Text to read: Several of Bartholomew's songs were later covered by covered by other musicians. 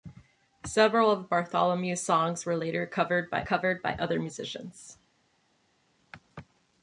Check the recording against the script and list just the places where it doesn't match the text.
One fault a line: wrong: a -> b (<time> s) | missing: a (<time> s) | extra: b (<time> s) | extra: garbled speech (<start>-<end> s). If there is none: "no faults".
no faults